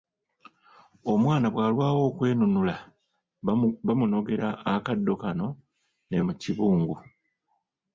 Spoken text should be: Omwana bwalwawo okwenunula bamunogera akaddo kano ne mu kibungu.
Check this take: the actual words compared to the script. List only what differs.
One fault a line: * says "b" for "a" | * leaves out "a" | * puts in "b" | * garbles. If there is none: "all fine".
all fine